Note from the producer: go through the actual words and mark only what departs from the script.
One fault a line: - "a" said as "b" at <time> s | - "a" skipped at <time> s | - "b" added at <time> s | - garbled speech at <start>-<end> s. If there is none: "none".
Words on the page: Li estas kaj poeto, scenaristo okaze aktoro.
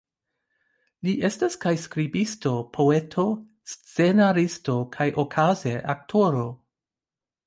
- "skribisto" added at 1.8 s
- "kaj" added at 5.0 s